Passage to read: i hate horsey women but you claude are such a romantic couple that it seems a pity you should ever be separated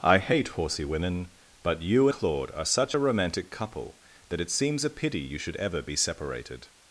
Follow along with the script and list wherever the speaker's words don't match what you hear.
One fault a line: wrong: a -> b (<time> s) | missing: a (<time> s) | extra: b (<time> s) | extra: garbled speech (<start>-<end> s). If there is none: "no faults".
no faults